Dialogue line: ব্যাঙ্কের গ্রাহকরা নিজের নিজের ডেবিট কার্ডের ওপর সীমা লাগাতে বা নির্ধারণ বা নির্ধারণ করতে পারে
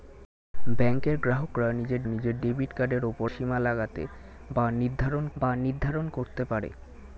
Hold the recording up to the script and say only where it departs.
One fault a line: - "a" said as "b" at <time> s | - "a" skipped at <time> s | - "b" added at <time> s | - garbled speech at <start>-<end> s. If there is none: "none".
none